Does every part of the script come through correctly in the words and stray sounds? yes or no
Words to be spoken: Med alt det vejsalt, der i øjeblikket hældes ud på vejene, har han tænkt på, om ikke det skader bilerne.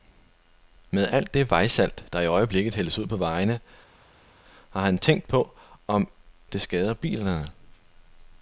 no